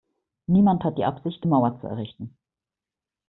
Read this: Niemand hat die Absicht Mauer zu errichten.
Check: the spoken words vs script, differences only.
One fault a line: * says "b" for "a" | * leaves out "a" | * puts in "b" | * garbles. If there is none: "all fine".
all fine